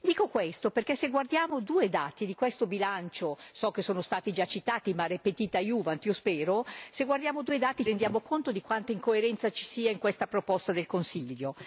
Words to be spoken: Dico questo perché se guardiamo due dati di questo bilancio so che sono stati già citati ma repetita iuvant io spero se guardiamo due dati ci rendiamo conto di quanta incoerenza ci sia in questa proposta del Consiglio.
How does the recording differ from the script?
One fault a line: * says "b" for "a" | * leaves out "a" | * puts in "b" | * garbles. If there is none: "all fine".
* leaves out "ci"